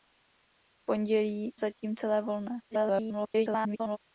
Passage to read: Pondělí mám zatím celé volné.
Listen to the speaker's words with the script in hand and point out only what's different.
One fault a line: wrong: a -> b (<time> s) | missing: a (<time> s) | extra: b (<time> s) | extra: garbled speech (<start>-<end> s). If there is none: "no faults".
missing: mám (1.5 s)
extra: garbled speech (2.7-4.0 s)